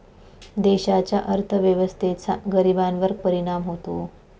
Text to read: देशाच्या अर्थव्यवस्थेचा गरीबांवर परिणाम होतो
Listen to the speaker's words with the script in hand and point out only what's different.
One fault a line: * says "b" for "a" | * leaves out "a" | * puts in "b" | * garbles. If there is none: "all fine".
all fine